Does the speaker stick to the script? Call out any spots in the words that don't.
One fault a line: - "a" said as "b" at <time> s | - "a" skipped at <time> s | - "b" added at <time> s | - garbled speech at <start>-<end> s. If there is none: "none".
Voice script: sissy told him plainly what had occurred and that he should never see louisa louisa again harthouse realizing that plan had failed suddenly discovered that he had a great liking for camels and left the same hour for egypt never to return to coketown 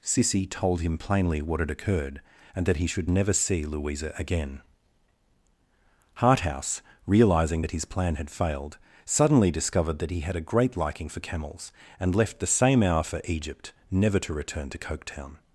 - "louisa" skipped at 4.1 s
- "his" added at 7.7 s